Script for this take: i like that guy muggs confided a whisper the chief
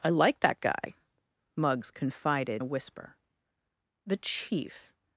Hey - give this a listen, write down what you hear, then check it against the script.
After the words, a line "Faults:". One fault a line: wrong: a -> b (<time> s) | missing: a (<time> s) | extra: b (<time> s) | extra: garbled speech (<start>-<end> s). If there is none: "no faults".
i like that guy muggs confided a whisper the chief
Faults:
no faults